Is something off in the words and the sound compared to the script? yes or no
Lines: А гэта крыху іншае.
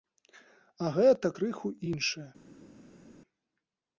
no